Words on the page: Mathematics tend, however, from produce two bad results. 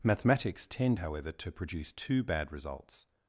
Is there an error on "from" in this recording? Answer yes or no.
yes